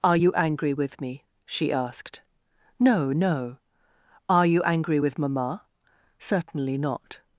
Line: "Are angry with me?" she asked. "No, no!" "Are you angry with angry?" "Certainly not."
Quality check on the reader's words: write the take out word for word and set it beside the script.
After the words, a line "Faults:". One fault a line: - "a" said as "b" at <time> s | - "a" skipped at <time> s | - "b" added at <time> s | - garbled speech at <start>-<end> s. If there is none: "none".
"Are you angry with me?" she asked. "No, no!" "Are you angry with mamma?" "Certainly not."
Faults:
- "you" added at 0.1 s
- "angry" said as "mamma" at 5.2 s